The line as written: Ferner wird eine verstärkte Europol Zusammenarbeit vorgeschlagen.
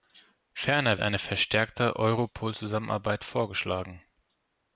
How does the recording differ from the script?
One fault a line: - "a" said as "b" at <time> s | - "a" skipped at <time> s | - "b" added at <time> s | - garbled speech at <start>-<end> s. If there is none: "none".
- "wird" skipped at 1.0 s